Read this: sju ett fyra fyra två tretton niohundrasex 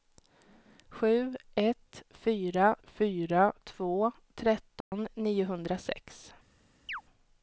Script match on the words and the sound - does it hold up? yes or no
no